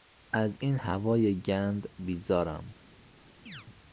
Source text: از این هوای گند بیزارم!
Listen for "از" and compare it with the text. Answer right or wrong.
right